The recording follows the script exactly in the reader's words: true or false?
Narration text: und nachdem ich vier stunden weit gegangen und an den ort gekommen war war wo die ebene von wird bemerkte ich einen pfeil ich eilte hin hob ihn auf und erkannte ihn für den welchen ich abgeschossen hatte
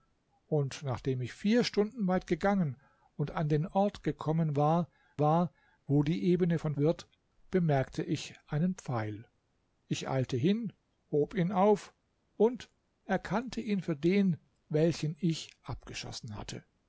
true